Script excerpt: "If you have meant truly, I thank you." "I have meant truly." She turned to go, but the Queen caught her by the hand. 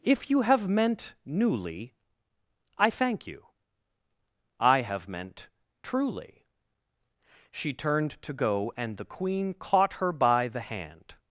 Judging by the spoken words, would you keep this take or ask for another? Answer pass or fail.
fail